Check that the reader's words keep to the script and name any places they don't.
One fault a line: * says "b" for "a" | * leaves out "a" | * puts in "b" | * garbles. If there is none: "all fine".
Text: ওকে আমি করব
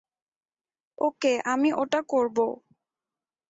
* puts in "ওটা"